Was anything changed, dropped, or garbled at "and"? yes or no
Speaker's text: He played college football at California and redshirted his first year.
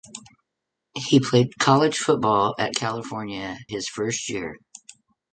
yes